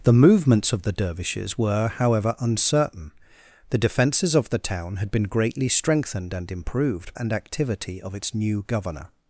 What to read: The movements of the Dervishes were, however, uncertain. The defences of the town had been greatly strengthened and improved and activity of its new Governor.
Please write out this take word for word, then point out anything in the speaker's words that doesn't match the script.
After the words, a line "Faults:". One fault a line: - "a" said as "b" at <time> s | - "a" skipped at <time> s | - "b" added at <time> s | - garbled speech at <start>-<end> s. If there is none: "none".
The movements of the Dervishes were, however, uncertain. The defences of the town had been greatly strengthened and improved and activity of its new Governor.
Faults:
none